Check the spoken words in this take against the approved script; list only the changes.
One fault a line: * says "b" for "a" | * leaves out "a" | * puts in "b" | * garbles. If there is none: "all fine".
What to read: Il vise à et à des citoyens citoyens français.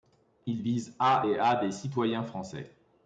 * leaves out "citoyens"